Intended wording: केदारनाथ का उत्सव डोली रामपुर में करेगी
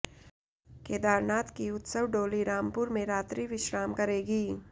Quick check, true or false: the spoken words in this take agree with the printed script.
false